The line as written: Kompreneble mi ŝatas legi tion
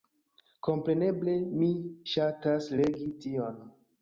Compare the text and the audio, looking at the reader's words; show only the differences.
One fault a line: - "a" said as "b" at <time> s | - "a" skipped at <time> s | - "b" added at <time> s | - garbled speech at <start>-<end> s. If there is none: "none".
none